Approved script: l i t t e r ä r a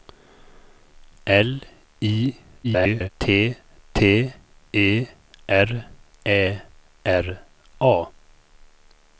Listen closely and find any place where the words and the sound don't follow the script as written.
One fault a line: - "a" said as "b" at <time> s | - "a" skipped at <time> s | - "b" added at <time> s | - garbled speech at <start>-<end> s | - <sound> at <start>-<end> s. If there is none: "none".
- garbled speech at 2.6-3.1 s